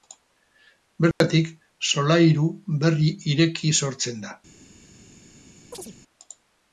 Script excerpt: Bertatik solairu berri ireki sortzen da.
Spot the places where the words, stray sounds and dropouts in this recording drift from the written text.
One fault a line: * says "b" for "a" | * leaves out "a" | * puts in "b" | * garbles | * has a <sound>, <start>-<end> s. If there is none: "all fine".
* has a dropout, 1.1-1.2 s
* has a chirp, 5.7-6.0 s